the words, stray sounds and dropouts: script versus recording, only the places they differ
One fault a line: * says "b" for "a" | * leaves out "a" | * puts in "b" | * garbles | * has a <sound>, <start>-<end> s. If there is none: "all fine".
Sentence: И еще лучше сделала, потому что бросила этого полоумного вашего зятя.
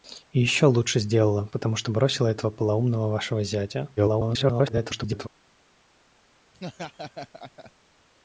* garbles
* has a laugh, 6.5-7.7 s